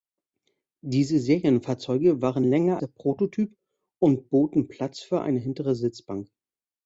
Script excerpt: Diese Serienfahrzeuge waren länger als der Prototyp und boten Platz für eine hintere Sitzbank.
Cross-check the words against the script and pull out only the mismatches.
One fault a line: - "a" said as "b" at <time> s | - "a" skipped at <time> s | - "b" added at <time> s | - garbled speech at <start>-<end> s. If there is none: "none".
- "als" skipped at 2.8 s